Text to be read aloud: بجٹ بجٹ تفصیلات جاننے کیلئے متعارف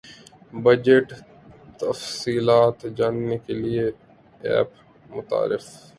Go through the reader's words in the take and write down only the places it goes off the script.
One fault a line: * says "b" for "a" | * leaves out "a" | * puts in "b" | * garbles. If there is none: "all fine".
* leaves out "بجٹ"
* puts in "ایپ"